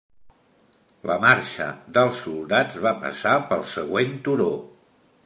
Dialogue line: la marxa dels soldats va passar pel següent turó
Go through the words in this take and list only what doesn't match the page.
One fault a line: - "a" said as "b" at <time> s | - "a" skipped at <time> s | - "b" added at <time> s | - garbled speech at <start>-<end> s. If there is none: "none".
none